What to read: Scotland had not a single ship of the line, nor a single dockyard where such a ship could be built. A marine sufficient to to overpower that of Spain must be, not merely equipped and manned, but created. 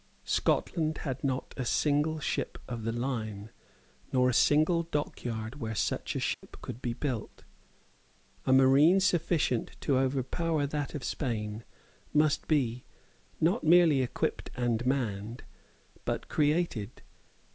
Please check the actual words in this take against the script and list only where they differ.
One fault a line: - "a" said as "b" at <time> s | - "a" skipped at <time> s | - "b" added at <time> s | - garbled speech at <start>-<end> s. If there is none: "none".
- "to" skipped at 10.0 s